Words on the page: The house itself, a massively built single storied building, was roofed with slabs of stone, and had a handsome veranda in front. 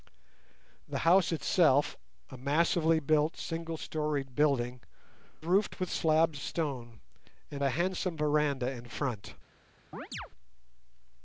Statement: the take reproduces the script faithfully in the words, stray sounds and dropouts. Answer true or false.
false